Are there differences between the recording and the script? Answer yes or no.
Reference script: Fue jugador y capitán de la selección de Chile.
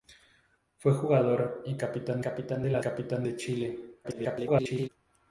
yes